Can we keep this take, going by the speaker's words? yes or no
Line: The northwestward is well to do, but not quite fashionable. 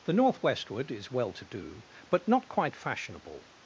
yes